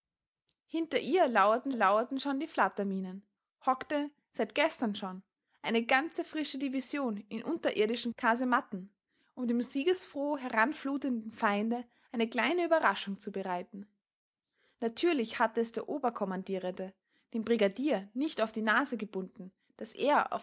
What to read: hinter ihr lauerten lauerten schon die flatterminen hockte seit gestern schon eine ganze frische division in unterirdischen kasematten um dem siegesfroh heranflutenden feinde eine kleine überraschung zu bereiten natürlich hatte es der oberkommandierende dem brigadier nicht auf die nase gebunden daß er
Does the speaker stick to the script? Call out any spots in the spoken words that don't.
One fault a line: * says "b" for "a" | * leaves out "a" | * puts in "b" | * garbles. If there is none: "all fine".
all fine